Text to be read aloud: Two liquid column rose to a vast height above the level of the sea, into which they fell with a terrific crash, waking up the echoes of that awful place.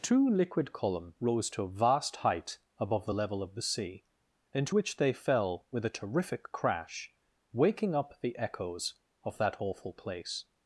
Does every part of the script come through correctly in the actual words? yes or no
yes